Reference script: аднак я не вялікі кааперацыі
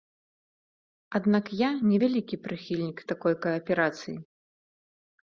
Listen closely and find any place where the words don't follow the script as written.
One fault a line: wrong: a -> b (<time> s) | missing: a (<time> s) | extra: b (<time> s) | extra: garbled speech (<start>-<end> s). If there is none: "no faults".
extra: прыхільнік такой (2.5 s)